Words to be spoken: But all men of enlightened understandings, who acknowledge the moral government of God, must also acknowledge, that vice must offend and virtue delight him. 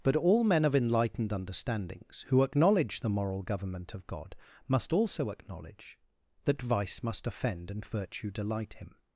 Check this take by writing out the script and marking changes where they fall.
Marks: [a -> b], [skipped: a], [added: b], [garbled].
But all men of enlightened understandings, who acknowledge the moral government of God, must also acknowledge, that vice must offend and virtue delight him.